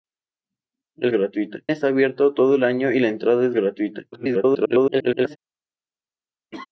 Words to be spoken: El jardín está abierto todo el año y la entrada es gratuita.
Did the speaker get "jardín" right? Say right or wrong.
wrong